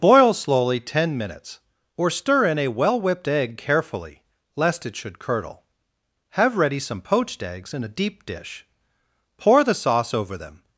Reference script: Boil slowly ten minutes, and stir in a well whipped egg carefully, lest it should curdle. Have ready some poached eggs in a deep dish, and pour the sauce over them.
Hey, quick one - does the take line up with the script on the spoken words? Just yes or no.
no